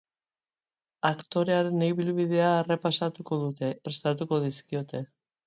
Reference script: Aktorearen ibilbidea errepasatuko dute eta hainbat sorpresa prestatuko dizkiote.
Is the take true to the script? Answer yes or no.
no